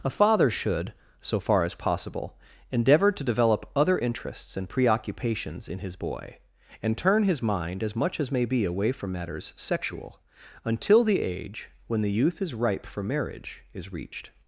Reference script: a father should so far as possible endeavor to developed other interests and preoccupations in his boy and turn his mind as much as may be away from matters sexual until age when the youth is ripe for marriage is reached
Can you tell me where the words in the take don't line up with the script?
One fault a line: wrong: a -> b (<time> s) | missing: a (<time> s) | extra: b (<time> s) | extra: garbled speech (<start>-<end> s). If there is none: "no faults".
wrong: developed -> develop (3.2 s)
extra: the (11.0 s)